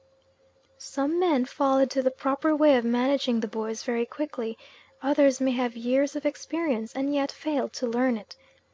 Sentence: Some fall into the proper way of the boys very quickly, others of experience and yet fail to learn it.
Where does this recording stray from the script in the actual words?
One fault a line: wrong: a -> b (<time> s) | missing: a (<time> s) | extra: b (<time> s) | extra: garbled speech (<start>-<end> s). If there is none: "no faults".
extra: men (1.2 s)
extra: managing (2.8 s)
extra: may have years (5.4 s)